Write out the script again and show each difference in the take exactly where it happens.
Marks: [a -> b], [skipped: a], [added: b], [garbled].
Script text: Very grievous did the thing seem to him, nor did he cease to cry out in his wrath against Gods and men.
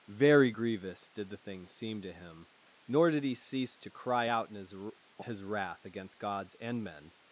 Very grievous did the thing seem to him, nor did he cease to cry out in his [added: his] wrath against Gods and men.